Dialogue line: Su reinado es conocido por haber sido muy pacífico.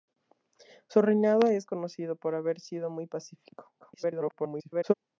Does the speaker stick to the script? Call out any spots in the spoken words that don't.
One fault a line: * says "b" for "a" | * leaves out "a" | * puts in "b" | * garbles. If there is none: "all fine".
* garbles